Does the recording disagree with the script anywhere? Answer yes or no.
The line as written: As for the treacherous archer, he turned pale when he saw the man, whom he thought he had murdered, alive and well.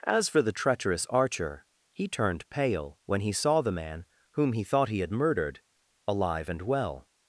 no